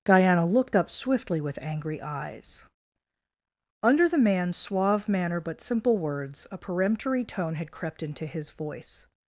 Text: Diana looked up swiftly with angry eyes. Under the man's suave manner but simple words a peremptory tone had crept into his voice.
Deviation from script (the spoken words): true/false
false